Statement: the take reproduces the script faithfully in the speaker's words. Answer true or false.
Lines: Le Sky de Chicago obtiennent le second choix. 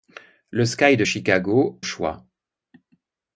false